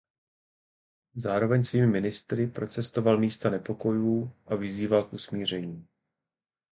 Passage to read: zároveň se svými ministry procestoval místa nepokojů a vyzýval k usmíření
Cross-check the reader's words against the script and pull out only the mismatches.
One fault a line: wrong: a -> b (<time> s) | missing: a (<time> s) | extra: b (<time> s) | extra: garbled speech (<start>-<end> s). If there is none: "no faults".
missing: se (1.6 s)